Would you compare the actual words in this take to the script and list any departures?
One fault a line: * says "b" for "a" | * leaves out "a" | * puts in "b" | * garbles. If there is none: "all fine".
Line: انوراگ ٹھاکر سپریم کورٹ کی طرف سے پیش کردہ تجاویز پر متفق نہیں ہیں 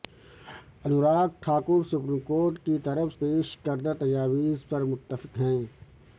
* leaves out "سے"
* leaves out "نہیں"